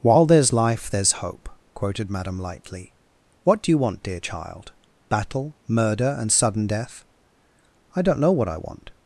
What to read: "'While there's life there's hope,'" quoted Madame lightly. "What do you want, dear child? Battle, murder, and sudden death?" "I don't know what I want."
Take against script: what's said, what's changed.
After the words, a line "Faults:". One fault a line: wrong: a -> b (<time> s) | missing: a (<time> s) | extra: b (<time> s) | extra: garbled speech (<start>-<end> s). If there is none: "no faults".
"'While there's life there's hope,'" quoted Madame lightly. "What do you want, dear child? Battle, murder, and sudden death?" "I don't know what I want."
Faults:
no faults